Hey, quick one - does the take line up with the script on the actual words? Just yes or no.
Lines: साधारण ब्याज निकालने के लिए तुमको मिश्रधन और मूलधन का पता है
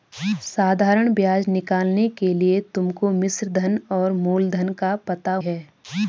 yes